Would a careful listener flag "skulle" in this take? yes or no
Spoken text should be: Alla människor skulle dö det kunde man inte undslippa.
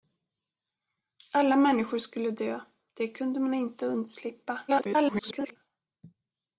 no